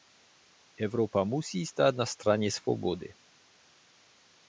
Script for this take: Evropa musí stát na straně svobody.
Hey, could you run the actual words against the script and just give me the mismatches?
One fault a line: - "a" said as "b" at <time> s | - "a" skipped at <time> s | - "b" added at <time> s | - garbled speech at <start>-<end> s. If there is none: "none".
none